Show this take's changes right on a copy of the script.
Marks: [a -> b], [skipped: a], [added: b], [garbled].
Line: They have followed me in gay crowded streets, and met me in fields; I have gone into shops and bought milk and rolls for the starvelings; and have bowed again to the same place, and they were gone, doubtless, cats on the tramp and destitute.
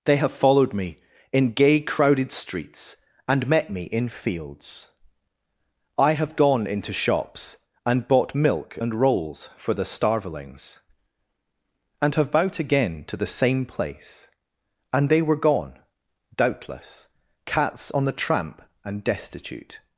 They have followed me in gay crowded streets, and met me in fields; I have gone into shops and bought milk and rolls for the starvelings; and have bowed again to the same place, and they were gone, doubtless, cats on the tramp and destitute.